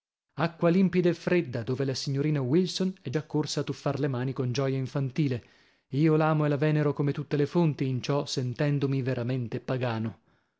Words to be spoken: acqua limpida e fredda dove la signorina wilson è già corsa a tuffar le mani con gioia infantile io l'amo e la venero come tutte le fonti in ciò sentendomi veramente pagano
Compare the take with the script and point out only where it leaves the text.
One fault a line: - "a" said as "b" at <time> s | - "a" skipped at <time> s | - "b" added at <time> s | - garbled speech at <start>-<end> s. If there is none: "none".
none